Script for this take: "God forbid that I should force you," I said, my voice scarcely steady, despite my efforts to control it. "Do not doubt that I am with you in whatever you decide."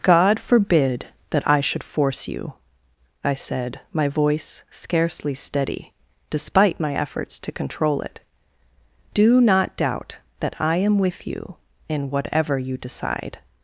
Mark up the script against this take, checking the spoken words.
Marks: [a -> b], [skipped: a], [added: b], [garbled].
"God forbid that I should force you," I said, my voice scarcely steady, despite my efforts to control it. "Do not doubt that I am with you in whatever you decide."